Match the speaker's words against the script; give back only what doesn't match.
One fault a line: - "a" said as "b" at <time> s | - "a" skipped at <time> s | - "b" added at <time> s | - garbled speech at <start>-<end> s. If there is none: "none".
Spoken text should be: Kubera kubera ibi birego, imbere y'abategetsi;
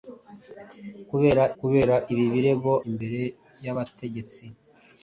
none